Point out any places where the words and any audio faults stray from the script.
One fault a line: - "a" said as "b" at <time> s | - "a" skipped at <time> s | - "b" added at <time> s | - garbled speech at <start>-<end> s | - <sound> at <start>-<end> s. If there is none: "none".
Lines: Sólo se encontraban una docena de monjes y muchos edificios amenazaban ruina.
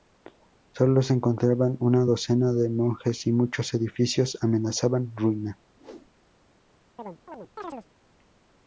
- whoosh at 5.8-6.1 s
- chirp at 7.0-7.9 s